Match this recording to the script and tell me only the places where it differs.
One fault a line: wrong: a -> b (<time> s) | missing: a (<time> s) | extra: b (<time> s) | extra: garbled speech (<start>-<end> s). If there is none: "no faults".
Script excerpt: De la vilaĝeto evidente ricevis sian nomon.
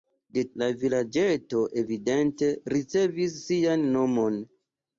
no faults